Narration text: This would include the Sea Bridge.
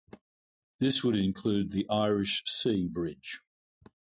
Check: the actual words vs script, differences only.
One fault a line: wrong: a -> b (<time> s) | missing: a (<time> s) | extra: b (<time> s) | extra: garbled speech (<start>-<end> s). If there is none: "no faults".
extra: Irish (1.9 s)